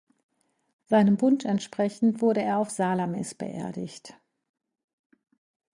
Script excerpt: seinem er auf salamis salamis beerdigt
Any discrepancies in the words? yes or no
yes